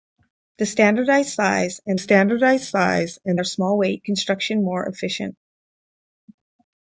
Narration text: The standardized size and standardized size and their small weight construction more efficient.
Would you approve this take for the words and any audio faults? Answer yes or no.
yes